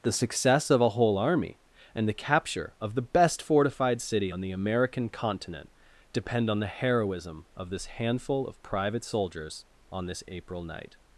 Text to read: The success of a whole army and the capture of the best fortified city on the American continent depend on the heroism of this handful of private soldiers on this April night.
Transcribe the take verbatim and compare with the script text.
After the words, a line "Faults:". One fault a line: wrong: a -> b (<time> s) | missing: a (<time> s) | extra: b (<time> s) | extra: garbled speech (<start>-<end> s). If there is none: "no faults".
The success of a whole army and the capture of the best fortified city on the American continent depend on the heroism of this handful of private soldiers on this April night.
Faults:
no faults